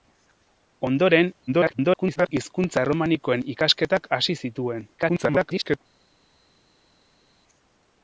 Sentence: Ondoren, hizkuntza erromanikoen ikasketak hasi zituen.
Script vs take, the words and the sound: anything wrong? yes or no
yes